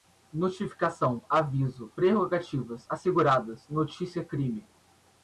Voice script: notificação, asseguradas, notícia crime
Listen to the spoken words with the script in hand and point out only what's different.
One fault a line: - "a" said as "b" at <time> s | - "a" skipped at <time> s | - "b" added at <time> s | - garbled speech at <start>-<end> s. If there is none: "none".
- "aviso prerrogativas" added at 1.3 s